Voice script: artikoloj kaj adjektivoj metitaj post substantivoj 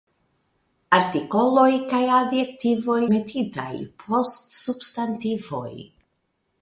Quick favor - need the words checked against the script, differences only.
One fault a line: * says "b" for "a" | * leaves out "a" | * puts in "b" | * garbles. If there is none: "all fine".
all fine